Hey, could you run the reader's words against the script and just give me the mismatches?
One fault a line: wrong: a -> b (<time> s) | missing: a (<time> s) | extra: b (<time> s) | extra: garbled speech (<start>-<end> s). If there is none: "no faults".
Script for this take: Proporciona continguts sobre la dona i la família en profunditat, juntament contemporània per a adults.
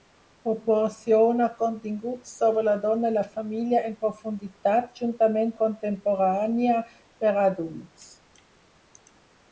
no faults